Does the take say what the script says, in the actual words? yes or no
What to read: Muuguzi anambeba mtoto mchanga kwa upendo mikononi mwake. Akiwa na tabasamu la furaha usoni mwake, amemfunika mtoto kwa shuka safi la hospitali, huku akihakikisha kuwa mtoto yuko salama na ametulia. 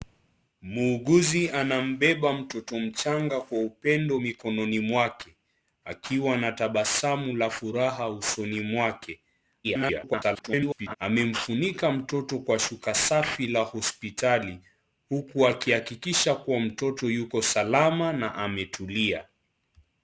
no